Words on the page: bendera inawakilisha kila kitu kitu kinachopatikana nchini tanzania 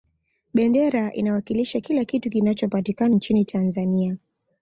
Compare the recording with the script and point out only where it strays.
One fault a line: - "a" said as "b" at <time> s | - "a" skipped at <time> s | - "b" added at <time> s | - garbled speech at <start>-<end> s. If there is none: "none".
- "kitu" skipped at 2.3 s